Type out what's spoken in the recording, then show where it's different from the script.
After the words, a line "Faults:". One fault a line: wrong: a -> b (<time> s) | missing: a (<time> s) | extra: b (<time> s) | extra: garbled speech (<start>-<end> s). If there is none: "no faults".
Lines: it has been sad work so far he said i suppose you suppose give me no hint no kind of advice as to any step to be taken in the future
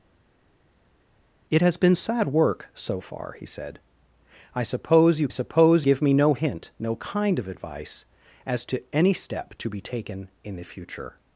it has been sad work so far he said i suppose you suppose give me no hint no kind of advice as to any step to be taken in the future
Faults:
no faults